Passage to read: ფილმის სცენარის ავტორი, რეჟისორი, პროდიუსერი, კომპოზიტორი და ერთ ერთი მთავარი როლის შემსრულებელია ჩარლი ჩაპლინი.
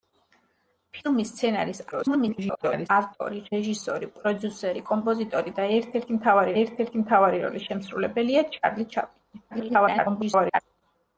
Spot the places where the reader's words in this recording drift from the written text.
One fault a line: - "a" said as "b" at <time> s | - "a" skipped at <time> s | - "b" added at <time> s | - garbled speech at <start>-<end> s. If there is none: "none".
- garbled speech at 1.9-2.9 s
- "ერთ ერთი მთავარი" added at 6.6 s
- garbled speech at 9.5-10.6 s